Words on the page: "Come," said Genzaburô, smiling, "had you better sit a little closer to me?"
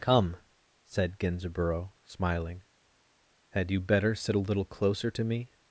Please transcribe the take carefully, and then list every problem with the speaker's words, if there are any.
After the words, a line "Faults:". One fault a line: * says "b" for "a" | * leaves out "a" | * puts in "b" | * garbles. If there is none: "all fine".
"Come," said Genzaburô, smiling, "had you better sit a little closer to me?"
Faults:
all fine